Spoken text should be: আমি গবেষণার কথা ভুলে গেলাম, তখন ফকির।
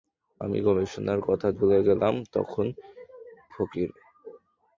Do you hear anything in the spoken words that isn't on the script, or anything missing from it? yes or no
no